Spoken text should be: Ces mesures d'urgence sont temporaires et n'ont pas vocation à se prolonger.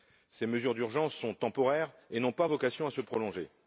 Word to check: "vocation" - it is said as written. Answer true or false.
true